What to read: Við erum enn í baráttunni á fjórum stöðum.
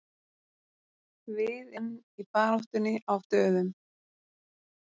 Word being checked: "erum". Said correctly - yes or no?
no